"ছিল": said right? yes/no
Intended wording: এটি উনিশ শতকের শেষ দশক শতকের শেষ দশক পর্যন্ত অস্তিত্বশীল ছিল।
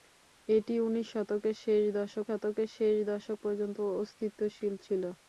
yes